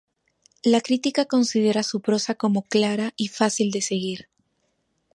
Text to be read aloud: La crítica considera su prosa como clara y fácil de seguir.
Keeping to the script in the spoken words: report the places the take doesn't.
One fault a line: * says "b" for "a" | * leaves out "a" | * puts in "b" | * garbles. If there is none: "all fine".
all fine